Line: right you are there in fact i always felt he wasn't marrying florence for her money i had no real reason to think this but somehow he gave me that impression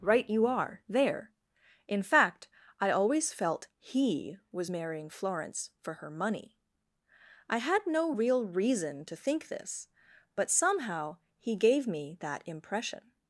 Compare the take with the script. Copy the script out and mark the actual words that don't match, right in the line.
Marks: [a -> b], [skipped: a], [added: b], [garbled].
right you are there in fact i always felt he [wasn't -> was] marrying florence for her money i had no real reason to think this but somehow he gave me that impression